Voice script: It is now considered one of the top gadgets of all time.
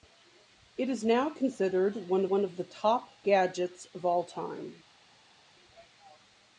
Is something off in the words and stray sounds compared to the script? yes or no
yes